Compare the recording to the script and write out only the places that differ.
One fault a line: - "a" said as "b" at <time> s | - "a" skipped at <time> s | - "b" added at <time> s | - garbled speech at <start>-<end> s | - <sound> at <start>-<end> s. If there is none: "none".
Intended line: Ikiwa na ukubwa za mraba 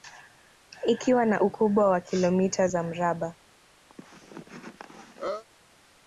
- "wa kilomita" added at 1.9 s
- cough at 3.9-5.4 s